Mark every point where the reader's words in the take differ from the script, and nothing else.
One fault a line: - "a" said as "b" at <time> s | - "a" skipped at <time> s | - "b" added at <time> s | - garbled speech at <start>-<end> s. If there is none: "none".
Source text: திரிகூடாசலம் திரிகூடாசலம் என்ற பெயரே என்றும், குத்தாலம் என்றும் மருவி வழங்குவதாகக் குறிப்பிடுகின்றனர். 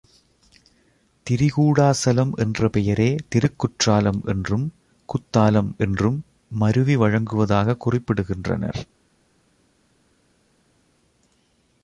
- "திரிகூடாசலம்" skipped at 2.3 s
- "திருக்குற்றாலம்" added at 3.3 s